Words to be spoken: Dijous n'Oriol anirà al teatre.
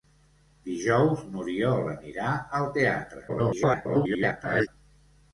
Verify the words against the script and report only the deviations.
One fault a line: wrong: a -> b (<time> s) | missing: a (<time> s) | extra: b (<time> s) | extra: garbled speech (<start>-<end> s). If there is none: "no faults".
extra: garbled speech (3.3-4.7 s)